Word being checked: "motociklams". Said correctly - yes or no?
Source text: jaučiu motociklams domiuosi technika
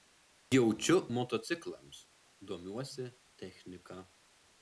yes